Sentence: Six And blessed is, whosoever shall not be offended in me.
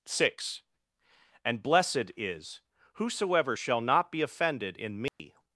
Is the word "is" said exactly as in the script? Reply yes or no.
yes